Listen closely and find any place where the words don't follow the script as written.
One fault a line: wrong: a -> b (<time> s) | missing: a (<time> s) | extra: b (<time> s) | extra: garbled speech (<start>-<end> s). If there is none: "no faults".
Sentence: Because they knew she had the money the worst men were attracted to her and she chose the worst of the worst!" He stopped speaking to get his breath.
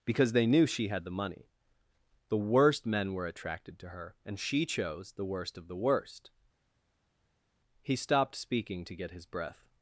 no faults